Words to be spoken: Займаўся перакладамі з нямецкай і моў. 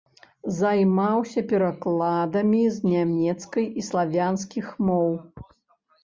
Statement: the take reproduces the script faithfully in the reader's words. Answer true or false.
false